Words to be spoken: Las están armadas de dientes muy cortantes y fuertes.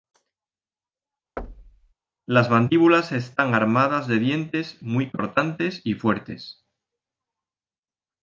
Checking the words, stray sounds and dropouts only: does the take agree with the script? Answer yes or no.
no